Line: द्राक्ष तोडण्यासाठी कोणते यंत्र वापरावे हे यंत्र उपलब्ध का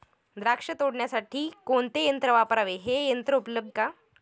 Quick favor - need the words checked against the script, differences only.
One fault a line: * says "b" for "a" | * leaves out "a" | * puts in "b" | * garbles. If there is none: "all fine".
all fine